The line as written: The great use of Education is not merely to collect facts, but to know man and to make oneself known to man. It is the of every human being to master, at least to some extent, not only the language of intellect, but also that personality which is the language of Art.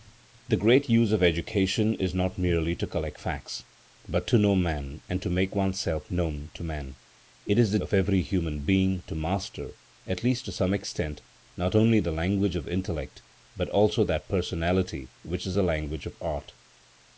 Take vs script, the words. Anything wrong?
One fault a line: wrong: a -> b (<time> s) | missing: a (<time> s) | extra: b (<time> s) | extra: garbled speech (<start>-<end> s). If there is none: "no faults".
no faults